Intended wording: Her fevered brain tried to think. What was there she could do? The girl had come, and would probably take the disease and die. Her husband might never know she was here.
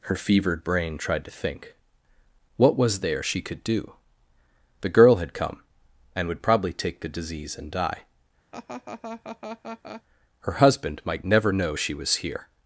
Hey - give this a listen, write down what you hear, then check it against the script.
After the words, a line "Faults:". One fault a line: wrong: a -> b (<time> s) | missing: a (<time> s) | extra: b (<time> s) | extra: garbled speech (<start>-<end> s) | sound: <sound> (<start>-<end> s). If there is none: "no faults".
Her fevered brain tried to think. What was there she could do? The girl had come, and would probably take the disease and die. Her husband might never know she was here.
Faults:
sound: laugh (8.5-10.0 s)